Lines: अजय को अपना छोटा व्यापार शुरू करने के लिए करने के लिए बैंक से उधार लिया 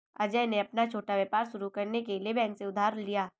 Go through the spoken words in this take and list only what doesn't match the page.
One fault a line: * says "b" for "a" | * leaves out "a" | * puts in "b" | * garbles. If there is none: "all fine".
* says "ने" for "को"
* leaves out "करने के लिए"